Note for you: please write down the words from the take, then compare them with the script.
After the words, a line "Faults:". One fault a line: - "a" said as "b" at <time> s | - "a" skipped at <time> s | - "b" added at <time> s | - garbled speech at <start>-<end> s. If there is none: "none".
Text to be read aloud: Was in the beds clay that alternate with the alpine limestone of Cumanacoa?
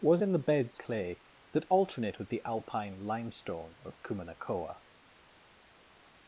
Was in the beds clay that alternate with the alpine limestone of Cumanacoa?
Faults:
none